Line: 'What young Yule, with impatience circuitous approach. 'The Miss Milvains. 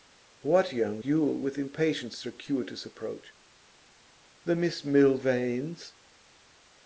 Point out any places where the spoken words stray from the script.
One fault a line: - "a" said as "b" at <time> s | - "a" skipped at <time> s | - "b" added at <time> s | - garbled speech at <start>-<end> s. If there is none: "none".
none